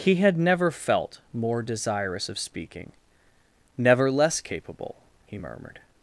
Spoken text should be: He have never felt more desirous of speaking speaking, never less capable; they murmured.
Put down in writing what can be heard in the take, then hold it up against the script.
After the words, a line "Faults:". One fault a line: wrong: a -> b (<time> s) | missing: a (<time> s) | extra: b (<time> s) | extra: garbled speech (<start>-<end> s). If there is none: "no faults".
He had never felt more desirous of speaking, never less capable; he murmured.
Faults:
wrong: have -> had (0.1 s)
missing: speaking (2.9 s)
wrong: they -> he (5.3 s)